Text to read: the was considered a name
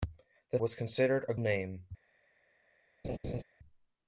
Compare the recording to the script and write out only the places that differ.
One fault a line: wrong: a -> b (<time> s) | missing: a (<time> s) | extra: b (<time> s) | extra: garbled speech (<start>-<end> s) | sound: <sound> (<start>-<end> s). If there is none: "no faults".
sound: laugh (3.0-3.4 s)